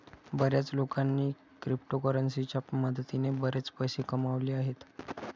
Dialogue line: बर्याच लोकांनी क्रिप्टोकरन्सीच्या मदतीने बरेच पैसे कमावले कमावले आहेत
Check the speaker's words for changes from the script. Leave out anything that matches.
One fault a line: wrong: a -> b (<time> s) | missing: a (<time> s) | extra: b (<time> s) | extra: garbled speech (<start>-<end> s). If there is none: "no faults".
missing: कमावले (4.5 s)